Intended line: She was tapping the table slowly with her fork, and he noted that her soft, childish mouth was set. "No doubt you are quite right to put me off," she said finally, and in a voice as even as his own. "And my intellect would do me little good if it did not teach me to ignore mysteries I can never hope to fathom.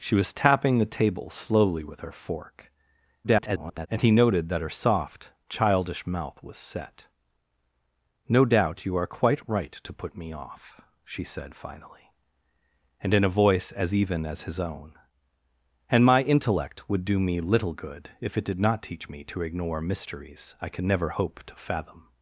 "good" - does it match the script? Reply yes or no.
yes